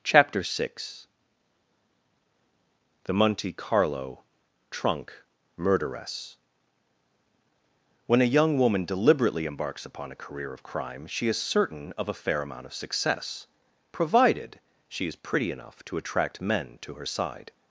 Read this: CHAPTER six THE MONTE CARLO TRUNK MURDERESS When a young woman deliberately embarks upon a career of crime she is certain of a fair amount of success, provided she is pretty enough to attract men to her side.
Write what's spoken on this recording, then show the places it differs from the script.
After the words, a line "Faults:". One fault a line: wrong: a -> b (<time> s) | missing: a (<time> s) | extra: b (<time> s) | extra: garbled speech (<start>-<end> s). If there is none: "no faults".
CHAPTER six THE MONTE CARLO TRUNK MURDERESS When a young woman deliberately embarks upon a career of crime she is certain of a fair amount of success, provided she is pretty enough to attract men to her side.
Faults:
no faults